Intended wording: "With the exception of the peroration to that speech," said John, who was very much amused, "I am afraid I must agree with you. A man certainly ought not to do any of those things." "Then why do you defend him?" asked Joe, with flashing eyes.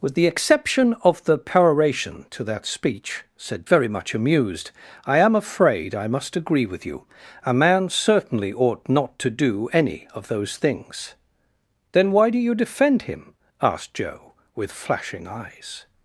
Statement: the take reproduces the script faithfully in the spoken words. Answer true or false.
false